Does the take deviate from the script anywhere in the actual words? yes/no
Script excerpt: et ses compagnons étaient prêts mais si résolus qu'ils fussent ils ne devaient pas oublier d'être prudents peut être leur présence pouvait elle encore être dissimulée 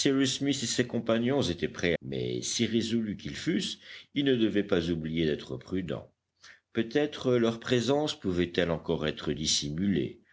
no